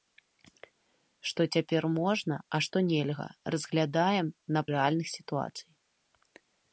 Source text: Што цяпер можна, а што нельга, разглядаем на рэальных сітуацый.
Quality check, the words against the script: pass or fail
pass